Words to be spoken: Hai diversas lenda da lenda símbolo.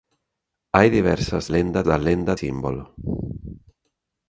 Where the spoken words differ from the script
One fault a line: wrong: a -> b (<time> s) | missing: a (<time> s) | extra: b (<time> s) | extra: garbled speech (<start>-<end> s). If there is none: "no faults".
no faults